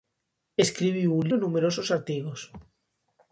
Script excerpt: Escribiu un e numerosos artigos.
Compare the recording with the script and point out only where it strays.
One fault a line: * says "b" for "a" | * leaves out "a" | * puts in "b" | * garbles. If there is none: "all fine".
all fine